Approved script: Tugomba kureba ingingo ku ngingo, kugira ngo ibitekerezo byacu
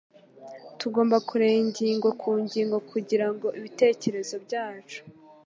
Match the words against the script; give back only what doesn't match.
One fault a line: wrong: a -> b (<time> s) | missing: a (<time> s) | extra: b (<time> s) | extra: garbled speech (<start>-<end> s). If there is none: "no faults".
no faults